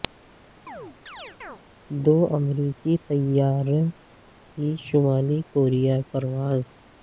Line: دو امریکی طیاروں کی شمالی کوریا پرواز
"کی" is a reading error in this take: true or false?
false